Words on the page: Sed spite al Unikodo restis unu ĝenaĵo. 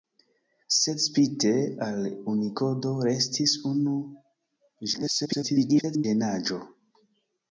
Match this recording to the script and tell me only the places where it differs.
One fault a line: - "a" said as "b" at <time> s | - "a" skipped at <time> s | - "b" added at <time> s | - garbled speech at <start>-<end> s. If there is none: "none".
- garbled speech at 4.9-6.0 s